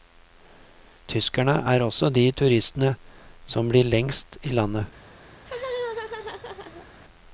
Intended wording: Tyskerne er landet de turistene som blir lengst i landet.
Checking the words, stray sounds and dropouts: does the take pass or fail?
fail